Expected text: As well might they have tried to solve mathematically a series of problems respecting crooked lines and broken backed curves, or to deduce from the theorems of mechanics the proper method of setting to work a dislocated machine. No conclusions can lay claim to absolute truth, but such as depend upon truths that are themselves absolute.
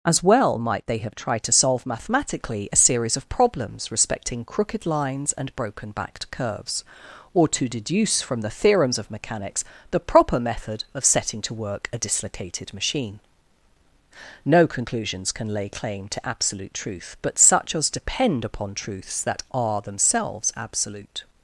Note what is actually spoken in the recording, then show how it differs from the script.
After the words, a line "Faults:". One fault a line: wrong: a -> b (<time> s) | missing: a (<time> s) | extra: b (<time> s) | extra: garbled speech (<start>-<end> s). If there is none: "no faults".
As well might they have tried to solve mathematically a series of problems respecting crooked lines and broken backed curves, or to deduce from the theorems of mechanics the proper method of setting to work a dislocated machine. No conclusions can lay claim to absolute truth, but such as depend upon truths that are themselves absolute.
Faults:
no faults